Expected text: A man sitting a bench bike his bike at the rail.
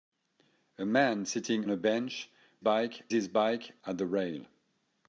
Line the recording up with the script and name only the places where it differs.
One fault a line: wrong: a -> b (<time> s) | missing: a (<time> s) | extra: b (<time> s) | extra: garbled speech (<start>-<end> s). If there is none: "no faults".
no faults